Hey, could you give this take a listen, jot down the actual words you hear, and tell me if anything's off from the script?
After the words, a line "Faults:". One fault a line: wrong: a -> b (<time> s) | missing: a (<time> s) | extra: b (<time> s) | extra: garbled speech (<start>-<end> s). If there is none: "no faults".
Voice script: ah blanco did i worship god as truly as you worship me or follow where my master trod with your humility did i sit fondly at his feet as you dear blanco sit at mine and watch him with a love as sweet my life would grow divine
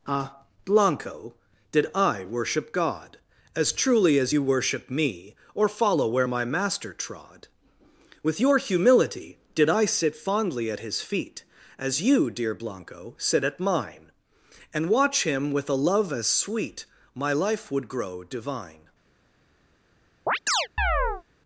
ah blanco did i worship god as truly as you worship me or follow where my master trod with your humility did i sit fondly at his feet as you dear blanco sit at mine and watch him with a love as sweet my life would grow divine
Faults:
no faults